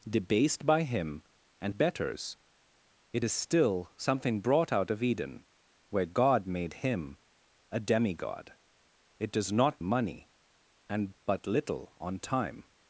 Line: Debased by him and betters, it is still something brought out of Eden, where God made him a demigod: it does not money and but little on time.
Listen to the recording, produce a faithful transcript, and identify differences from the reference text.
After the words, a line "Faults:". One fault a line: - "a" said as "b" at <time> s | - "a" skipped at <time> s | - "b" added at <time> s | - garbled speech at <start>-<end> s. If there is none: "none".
Debased by him and betters, it is still something brought out of Eden, where God made him a demigod: it does not money and but little on time.
Faults:
none